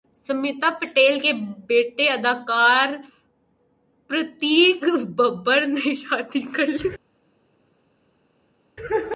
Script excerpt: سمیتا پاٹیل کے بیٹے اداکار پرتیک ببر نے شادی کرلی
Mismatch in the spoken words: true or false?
false